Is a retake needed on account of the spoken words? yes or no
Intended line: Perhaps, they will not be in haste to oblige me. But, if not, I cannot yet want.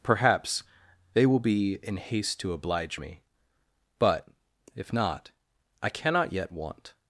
yes